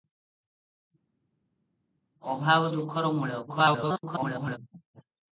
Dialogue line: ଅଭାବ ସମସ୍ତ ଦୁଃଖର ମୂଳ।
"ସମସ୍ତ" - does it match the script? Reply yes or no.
no